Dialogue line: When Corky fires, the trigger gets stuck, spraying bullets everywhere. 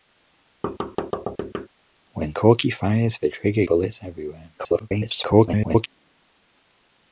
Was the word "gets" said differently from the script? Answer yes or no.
yes